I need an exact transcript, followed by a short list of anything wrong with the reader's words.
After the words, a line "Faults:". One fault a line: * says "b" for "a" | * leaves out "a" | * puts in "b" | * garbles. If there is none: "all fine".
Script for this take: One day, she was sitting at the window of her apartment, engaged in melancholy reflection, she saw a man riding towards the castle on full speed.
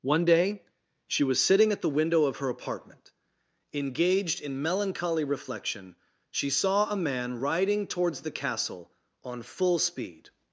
One day, she was sitting at the window of her apartment, engaged in melancholy reflection, she saw a man riding towards the castle on full speed.
Faults:
all fine